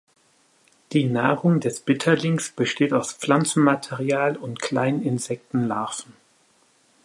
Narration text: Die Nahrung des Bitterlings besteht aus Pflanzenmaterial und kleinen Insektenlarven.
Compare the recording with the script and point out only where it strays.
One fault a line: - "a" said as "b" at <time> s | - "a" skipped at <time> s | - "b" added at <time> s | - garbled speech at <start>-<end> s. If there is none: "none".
none